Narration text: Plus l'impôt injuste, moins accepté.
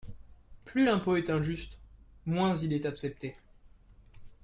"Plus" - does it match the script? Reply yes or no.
yes